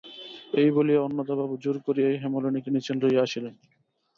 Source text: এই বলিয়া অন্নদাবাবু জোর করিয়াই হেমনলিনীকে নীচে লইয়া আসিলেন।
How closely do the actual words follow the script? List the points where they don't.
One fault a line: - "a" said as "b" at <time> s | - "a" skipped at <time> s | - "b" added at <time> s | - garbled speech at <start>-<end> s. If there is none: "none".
none